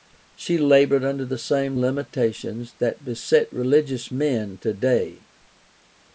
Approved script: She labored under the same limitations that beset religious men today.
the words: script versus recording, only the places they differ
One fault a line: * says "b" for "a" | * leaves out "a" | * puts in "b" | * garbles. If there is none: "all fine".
all fine